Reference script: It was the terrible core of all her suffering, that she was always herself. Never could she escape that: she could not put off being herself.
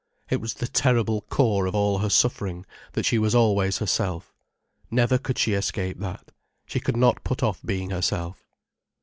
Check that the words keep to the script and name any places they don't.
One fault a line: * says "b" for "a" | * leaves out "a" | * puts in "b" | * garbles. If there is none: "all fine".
all fine